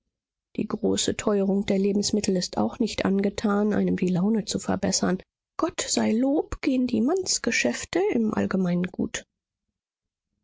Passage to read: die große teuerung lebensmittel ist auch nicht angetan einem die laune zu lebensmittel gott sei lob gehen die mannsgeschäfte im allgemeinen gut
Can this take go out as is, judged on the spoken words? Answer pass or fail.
fail